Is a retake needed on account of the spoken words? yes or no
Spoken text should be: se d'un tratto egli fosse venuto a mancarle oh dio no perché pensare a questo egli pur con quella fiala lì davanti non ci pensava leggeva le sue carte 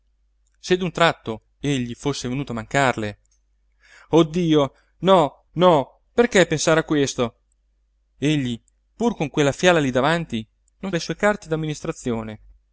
yes